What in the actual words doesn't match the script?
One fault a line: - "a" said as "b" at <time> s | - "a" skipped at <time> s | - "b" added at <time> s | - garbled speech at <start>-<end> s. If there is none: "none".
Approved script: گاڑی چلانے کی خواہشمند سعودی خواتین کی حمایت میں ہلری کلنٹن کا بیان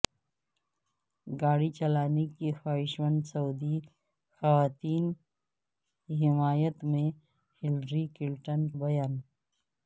- "کا" skipped at 8.7 s